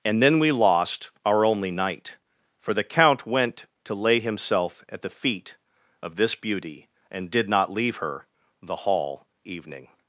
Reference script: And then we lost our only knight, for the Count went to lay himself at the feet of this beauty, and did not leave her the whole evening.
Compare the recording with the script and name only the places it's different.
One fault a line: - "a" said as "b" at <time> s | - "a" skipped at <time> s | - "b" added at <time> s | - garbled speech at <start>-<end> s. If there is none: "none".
- "whole" said as "hall" at 8.8 s